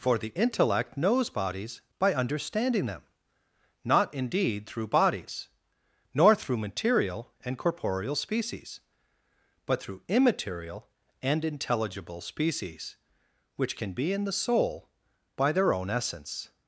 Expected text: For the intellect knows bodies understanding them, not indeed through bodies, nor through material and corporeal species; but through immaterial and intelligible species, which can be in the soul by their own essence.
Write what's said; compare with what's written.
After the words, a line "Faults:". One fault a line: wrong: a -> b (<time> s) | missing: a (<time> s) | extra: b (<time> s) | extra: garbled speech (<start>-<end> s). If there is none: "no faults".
For the intellect knows bodies by understanding them, not indeed through bodies, nor through material and corporeal species; but through immaterial and intelligible species, which can be in the soul by their own essence.
Faults:
extra: by (2.0 s)